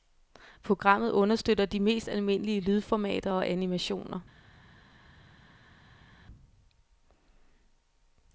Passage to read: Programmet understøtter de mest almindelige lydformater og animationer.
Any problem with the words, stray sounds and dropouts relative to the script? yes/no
no